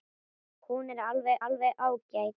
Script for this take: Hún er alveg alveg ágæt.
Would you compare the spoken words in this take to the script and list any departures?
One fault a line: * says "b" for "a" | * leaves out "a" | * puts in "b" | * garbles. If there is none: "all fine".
all fine